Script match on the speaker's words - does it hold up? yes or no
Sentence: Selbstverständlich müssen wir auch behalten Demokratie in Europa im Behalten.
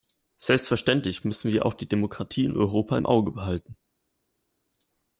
no